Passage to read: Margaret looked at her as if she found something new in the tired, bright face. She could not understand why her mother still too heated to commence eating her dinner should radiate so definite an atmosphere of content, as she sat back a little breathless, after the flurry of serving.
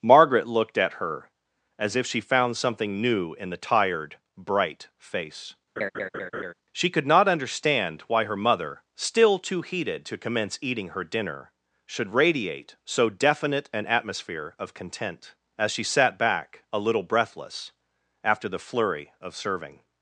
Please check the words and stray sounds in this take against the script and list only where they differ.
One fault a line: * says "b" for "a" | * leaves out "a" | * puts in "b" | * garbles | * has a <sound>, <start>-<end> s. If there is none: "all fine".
* has a laugh, 5.8-6.5 s